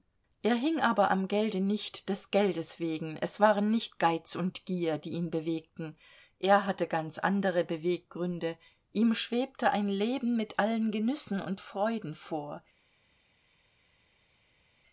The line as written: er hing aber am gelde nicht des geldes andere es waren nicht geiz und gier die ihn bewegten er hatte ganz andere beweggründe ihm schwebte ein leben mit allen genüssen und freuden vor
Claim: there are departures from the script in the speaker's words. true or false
true